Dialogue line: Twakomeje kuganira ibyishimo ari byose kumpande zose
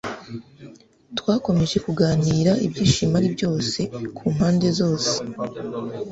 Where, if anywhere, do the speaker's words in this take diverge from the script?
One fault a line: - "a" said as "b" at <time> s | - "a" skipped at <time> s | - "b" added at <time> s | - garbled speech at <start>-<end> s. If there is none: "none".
none